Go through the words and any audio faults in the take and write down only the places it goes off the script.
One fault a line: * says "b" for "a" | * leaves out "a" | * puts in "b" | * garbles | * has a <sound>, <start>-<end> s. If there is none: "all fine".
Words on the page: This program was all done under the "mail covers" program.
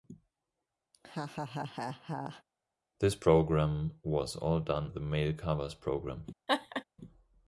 * has a laugh, 0.9-2.4 s
* leaves out "under"
* has a laugh, 6.5-6.8 s